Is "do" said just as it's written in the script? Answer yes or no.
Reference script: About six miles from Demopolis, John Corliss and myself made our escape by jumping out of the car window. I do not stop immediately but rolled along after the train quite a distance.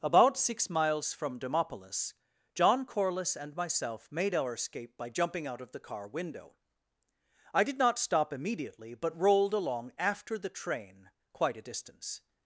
no